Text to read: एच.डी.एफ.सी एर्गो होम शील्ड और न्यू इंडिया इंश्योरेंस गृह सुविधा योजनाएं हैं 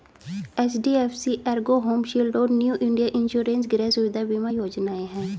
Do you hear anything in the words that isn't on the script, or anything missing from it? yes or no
yes